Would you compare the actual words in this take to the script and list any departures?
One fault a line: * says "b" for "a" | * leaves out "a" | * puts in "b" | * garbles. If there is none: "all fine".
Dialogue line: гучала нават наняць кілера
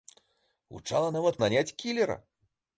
all fine